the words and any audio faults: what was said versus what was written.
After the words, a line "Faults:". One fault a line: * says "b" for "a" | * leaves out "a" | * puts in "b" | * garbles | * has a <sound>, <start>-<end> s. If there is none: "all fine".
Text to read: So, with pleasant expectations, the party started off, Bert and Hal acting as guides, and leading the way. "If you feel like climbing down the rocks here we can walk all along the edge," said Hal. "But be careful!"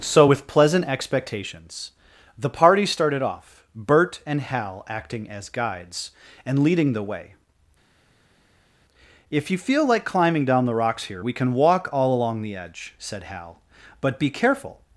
So, with pleasant expectations, the party started off, Bert and Hal acting as guides, and leading the way. "If you feel like climbing down the rocks here we can walk all along the edge," said Hal. "But be careful!"
Faults:
all fine